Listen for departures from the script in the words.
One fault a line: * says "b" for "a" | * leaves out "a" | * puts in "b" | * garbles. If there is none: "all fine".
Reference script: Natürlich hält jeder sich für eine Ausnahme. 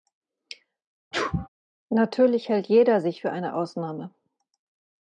all fine